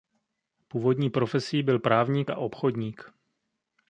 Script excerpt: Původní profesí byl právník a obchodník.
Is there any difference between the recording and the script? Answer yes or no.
no